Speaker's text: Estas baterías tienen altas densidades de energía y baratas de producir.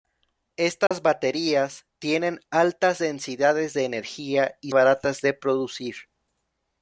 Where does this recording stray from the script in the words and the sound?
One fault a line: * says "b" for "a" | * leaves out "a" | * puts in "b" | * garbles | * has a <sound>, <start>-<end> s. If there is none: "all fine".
* has a dropout, 0.9-0.9 s